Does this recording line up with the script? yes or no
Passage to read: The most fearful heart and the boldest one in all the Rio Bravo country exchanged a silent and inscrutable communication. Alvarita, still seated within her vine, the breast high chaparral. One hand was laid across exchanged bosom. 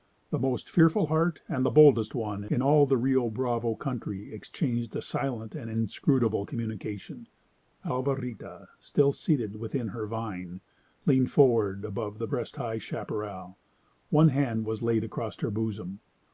no